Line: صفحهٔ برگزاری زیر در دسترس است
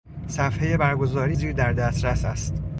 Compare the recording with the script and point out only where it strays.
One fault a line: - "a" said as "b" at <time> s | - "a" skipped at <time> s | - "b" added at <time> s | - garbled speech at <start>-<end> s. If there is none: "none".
none